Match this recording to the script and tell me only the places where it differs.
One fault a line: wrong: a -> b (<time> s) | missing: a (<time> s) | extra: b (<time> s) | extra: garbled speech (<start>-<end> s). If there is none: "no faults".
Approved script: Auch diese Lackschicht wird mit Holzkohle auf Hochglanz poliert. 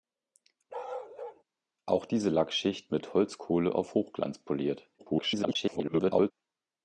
missing: wird (2.9 s)
extra: garbled speech (5.0-6.3 s)